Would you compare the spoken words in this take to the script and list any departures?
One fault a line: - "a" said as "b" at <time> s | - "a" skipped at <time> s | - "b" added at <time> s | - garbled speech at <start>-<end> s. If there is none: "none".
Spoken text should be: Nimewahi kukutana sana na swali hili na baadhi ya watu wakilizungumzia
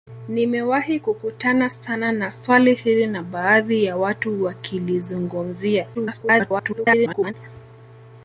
- garbled speech at 5.9-7.3 s